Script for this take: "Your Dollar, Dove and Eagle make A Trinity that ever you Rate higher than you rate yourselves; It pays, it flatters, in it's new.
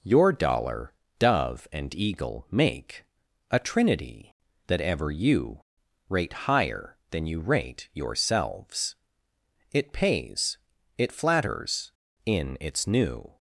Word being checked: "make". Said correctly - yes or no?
yes